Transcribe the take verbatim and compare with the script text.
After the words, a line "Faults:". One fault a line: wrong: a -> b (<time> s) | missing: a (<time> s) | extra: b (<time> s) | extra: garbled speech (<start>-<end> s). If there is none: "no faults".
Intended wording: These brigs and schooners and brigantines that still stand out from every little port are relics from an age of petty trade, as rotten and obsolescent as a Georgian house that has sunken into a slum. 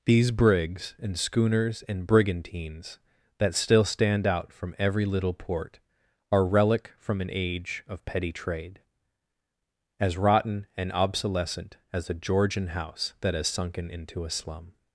These brigs and schooners and brigantines that still stand out from every little port are relic from an age of petty trade, as rotten and obsolescent as a Georgian house that has sunken into a slum.
Faults:
wrong: relics -> relic (6.5 s)